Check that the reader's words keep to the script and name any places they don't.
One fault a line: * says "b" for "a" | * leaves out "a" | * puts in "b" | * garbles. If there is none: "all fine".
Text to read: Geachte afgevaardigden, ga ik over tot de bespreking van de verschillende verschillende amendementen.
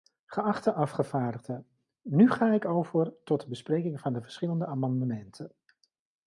* puts in "nu"
* leaves out "verschillende"